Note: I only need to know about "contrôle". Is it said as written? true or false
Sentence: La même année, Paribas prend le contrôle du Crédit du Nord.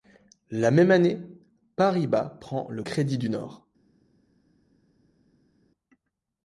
false